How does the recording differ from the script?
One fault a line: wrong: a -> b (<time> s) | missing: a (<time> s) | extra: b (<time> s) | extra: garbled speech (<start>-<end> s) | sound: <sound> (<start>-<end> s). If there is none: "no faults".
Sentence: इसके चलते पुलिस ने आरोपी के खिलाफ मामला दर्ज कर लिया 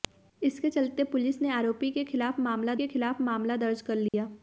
extra: के खिलाफ मामला (2.7 s)
sound: dropout (4.1-4.1 s)